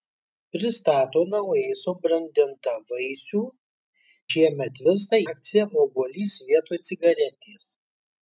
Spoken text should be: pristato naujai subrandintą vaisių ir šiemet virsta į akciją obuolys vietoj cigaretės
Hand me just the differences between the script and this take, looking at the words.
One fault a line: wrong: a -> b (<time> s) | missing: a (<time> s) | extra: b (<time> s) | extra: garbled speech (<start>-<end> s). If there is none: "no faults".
missing: ir (3.4 s)
missing: į (5.2 s)